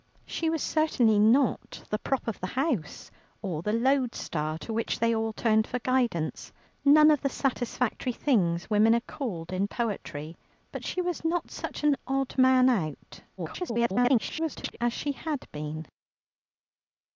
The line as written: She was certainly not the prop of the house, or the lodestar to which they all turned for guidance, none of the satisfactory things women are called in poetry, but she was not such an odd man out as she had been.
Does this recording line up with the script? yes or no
no